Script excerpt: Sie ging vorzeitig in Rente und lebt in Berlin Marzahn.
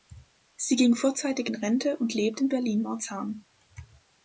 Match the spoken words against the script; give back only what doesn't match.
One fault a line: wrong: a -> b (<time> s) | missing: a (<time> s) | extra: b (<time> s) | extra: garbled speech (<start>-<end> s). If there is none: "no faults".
no faults